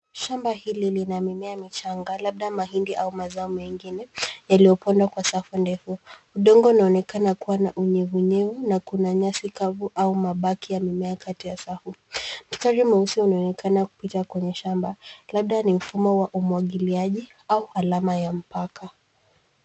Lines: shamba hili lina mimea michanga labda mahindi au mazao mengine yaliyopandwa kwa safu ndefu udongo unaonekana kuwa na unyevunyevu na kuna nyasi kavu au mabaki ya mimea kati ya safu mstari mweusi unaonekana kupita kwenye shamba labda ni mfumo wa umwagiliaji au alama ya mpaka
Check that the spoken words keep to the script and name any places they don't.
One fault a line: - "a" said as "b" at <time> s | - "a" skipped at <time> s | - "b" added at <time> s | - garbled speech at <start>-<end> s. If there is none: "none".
none